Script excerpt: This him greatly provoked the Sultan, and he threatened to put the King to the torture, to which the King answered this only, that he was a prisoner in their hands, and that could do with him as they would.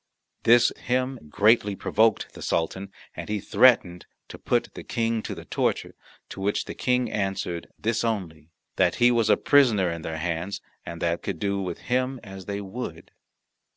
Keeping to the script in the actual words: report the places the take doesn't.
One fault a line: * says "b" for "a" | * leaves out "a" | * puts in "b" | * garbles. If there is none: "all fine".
all fine